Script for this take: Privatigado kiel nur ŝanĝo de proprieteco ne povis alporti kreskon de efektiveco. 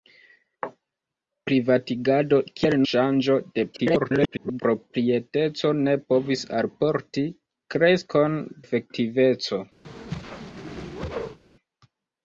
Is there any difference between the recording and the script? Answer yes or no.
yes